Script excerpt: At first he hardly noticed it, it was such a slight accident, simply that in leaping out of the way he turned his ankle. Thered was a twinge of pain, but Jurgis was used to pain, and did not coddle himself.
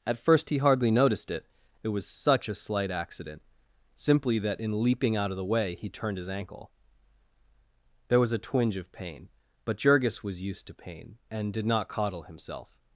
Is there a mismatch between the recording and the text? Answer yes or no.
yes